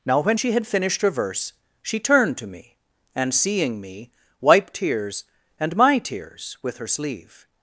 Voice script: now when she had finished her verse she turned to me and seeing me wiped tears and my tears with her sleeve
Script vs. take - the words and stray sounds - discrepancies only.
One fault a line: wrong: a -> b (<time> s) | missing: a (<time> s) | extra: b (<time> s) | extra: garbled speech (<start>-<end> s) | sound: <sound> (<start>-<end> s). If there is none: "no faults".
no faults